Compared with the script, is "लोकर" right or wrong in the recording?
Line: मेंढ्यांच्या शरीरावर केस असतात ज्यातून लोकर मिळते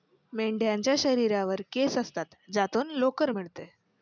right